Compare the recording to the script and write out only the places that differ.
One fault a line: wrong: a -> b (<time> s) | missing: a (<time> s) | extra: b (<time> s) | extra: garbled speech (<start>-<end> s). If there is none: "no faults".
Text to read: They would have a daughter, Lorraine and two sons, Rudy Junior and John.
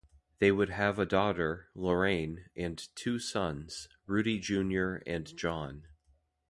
no faults